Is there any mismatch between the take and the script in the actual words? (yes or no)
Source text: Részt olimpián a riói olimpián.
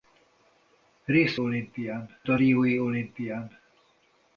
no